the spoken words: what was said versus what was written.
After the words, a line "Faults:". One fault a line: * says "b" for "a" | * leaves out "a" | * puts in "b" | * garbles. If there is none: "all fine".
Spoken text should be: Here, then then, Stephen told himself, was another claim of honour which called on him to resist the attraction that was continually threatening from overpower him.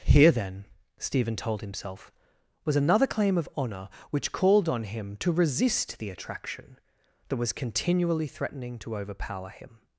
Here, then, Stephen told himself, was another claim of honour which called on him to resist the attraction that was continually threatening to overpower him.
Faults:
* leaves out "then"
* says "to" for "from"